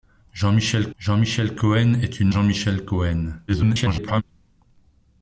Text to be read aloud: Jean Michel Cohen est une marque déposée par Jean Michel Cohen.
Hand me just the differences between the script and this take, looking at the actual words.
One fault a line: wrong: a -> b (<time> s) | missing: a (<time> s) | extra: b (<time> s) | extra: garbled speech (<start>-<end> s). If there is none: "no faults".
extra: jean Michel (1.0 s)
missing: marque déposée par (2.3 s)
extra: garbled speech (3.5-4.2 s)